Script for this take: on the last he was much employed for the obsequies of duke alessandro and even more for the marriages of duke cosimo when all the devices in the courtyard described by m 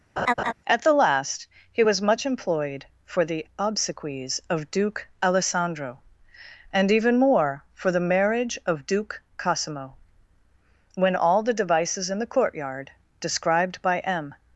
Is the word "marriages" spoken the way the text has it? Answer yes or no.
no